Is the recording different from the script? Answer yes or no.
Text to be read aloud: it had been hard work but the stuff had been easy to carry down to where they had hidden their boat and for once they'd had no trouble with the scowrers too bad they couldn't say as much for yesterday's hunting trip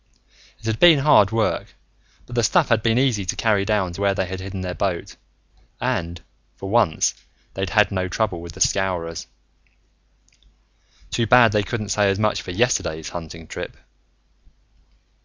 no